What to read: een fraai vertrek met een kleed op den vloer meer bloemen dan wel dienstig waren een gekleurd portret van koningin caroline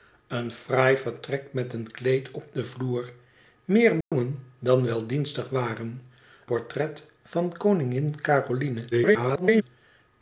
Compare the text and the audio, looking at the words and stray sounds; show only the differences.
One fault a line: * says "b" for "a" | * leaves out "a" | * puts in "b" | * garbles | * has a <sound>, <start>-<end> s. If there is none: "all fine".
* has a dropout, 4.0-4.1 s
* leaves out "een gekleurd"
* garbles